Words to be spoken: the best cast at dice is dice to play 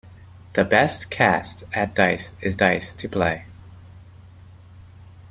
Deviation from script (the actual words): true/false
false